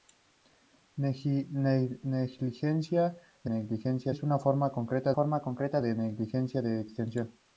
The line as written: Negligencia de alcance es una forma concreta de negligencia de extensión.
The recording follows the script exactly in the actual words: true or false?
false